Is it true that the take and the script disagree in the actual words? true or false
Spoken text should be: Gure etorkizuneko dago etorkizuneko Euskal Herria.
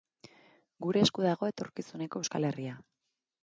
true